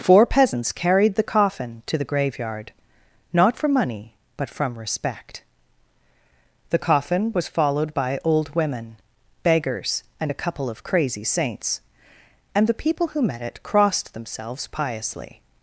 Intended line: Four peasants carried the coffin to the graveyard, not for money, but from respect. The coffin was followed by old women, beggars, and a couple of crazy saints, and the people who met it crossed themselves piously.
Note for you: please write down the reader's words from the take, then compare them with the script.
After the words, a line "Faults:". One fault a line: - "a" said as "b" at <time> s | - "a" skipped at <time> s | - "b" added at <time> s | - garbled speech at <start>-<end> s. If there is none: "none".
Four peasants carried the coffin to the graveyard, not for money, but from respect. The coffin was followed by old women, beggars, and a couple of crazy saints, and the people who met it crossed themselves piously.
Faults:
none